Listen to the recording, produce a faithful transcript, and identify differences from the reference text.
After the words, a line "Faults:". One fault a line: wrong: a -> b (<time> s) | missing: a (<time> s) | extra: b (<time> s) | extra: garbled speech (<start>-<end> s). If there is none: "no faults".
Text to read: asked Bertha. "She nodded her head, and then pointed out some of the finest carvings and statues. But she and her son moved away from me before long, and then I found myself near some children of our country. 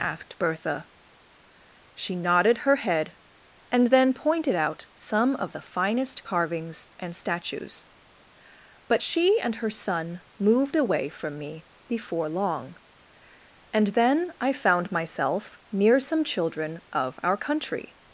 asked Bertha. "She nodded her head, and then pointed out some of the finest carvings and statues. But she and her son moved away from me before long, and then I found myself near some children of our country.
Faults:
no faults